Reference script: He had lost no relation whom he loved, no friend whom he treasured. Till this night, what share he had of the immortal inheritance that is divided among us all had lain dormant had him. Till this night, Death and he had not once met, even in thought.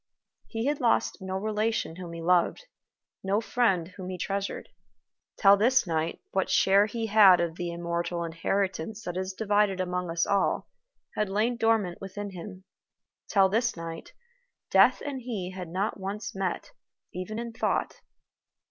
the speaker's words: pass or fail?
fail